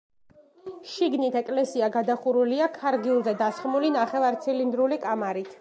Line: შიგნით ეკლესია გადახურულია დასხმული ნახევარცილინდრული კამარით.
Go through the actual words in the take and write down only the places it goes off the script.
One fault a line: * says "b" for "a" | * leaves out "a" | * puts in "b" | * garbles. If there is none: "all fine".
* puts in "ქარგილზე"